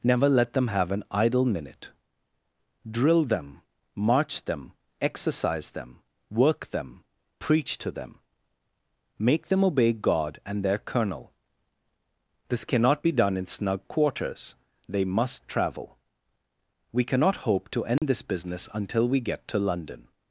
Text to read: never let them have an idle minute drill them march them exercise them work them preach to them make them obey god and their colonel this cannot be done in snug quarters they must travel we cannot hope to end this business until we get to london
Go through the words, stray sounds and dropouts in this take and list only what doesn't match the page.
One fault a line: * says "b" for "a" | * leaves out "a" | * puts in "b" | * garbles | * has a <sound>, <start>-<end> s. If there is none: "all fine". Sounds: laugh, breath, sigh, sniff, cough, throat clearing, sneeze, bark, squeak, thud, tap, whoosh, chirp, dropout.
* has a dropout, 18.0-18.0 s